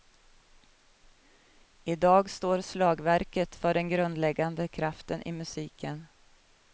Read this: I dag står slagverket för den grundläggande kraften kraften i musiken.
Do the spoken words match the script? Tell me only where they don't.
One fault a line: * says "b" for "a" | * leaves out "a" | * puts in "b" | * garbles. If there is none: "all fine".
* leaves out "kraften"